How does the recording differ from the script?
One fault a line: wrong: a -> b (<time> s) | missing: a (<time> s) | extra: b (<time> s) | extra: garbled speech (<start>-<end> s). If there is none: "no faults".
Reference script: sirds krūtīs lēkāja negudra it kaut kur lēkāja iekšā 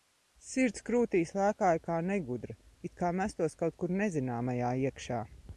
extra: kā (1.9 s)
extra: kā mestos (3.0 s)
wrong: lēkāja -> nezināmajā (4.0 s)